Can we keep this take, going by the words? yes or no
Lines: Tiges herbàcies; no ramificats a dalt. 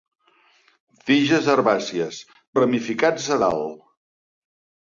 no